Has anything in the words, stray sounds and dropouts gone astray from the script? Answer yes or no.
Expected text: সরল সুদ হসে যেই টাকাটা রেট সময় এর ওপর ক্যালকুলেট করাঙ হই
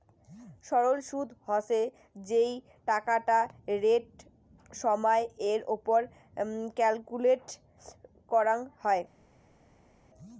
no